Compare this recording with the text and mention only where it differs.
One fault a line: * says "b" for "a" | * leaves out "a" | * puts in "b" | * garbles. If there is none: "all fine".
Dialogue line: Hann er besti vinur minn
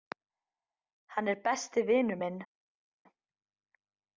all fine